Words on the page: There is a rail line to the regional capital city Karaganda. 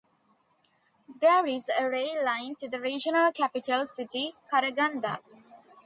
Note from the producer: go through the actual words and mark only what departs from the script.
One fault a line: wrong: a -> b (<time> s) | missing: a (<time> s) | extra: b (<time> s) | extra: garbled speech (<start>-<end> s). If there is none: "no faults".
no faults